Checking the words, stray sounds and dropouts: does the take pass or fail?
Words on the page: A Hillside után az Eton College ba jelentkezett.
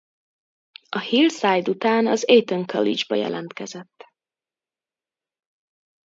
pass